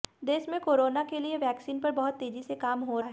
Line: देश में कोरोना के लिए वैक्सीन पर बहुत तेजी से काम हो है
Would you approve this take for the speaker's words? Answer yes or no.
yes